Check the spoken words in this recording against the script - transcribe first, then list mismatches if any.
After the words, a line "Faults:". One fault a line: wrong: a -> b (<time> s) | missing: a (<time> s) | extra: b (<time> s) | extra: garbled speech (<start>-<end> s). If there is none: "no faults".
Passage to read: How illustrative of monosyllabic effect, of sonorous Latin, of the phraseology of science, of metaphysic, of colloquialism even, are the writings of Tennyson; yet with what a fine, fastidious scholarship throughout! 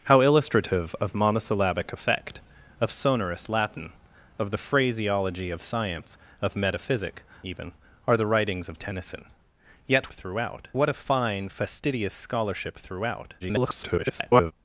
How illustrative of monosyllabic effect, of sonorous Latin, of the phraseology of science, of metaphysic, even, are the writings of Tennyson; yet throughout what a fine, fastidious scholarship throughout! [garbled]
Faults:
missing: of colloquialism (7.2 s)
wrong: with -> throughout (10.1 s)
extra: garbled speech (13.4-14.5 s)